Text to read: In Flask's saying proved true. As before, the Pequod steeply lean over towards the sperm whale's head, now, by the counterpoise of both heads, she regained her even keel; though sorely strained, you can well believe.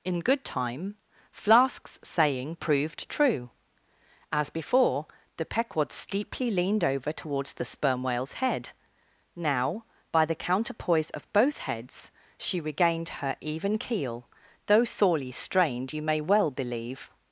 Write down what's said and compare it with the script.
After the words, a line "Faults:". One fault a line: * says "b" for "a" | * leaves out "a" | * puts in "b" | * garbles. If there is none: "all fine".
In good time, Flask's saying proved true. As before, the Pequod steeply leaned over towards the sperm whale's head, now, by the counterpoise of both heads, she regained her even keel; though sorely strained, you may well believe.
Faults:
* puts in "good time"
* says "leaned" for "lean"
* says "may" for "can"